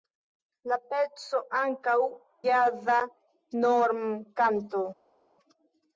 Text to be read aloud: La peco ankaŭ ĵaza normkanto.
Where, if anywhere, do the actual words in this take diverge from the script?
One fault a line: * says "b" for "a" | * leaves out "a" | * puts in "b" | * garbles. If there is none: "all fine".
all fine